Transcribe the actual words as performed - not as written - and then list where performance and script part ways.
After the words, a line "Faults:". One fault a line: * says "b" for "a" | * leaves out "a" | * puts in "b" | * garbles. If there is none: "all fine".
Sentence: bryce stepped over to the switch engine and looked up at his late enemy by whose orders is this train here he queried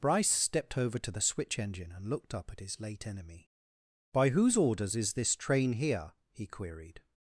bryce stepped over to the switch engine and looked up at his late enemy by whose orders is this train here he queried
Faults:
all fine